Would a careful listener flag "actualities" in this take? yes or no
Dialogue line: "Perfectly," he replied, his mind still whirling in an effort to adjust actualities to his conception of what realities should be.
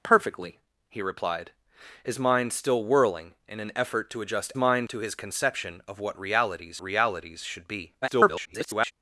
yes